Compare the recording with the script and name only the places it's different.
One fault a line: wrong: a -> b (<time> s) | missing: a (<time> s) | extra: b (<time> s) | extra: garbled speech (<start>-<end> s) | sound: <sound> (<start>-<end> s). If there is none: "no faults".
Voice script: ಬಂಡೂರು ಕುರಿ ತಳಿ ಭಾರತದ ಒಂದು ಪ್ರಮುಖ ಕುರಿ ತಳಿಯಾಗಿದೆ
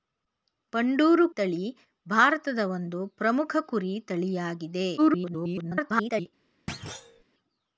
missing: ಕುರಿ (1.3 s)
extra: garbled speech (5.0-6.3 s)
sound: thud (6.7-7.2 s)